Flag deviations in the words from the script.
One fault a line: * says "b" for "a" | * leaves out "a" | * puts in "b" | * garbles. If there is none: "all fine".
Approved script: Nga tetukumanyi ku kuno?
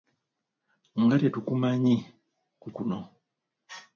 all fine